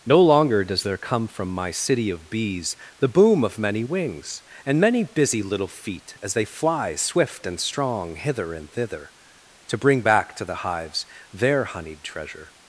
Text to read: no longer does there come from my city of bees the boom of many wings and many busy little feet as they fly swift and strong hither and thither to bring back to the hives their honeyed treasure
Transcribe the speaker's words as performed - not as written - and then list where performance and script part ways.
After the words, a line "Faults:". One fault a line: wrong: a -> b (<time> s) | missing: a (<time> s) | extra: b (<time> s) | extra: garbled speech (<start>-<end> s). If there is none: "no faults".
no longer does there come from my city of bees the boom of many wings and many busy little feet as they fly swift and strong hither and thither to bring back to the hives their honeyed treasure
Faults:
no faults